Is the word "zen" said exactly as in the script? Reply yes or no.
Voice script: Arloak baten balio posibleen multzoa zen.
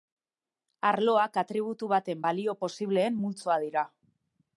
no